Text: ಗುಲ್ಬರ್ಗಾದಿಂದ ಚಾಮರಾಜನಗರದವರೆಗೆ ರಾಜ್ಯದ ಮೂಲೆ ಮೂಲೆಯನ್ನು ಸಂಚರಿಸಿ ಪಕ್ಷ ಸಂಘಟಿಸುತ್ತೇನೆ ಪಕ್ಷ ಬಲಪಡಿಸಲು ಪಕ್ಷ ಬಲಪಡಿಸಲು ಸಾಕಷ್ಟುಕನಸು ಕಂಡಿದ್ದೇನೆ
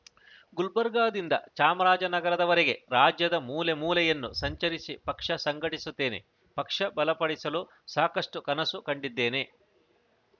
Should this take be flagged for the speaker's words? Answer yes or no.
yes